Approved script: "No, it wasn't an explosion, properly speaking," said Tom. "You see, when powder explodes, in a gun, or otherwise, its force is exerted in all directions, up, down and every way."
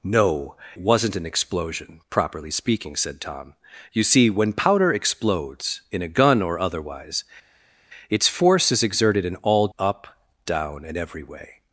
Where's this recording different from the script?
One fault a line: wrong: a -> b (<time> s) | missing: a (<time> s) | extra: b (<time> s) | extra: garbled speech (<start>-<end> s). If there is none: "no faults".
missing: it (0.6 s)
missing: directions (9.7 s)